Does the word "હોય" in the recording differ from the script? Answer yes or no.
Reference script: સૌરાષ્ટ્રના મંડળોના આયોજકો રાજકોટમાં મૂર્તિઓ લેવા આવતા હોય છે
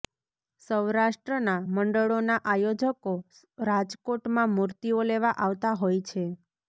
no